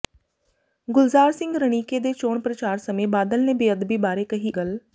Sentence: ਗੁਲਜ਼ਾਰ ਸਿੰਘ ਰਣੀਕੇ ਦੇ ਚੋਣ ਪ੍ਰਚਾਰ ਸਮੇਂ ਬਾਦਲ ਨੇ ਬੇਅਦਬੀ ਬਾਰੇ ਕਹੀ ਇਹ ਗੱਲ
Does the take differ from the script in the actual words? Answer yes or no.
yes